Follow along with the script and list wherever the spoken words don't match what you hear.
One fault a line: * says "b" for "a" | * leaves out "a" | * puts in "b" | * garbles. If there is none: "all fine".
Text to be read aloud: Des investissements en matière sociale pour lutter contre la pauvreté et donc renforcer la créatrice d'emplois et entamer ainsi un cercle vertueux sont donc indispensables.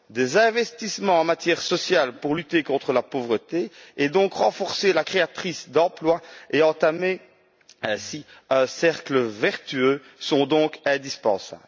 all fine